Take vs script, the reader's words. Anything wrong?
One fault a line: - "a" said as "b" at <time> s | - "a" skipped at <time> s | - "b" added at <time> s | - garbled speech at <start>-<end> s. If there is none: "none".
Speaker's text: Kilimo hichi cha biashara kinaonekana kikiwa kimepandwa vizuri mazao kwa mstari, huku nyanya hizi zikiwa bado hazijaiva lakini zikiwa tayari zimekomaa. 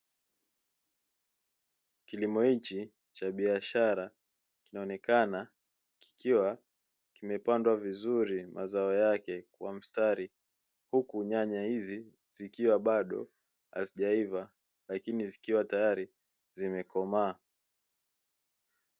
- "yake" added at 8.9 s